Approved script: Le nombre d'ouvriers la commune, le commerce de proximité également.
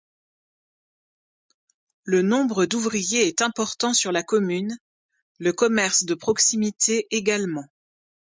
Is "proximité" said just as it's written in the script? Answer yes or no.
yes